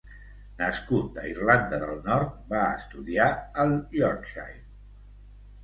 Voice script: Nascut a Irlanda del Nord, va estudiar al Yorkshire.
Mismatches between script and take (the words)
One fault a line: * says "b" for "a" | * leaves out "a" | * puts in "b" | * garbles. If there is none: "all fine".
all fine